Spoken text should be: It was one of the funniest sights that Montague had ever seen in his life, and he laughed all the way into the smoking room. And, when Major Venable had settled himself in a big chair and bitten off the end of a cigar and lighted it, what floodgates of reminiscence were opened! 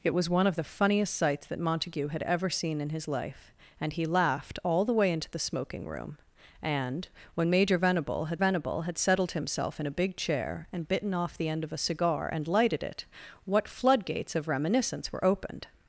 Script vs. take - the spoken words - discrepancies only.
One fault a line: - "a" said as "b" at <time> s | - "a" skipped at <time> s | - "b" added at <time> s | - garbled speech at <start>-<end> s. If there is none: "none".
- "Venable had" added at 8.4 s